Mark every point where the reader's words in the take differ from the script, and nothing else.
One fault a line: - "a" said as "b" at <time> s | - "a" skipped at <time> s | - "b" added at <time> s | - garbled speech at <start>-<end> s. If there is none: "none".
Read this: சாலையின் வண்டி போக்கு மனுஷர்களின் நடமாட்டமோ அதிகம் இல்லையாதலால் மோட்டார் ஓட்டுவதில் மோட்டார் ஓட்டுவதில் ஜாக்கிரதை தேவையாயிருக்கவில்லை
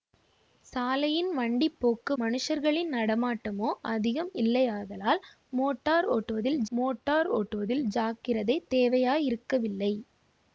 none